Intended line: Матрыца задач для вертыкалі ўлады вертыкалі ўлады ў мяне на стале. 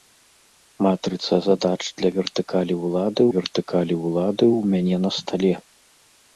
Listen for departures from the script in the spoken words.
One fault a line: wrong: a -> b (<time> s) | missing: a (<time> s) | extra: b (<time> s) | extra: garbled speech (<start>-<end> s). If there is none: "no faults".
no faults